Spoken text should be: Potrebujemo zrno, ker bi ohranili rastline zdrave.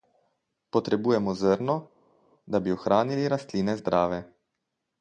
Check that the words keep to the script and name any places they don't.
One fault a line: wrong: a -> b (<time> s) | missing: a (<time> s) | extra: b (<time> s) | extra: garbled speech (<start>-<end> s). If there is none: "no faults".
wrong: ker -> da (2.4 s)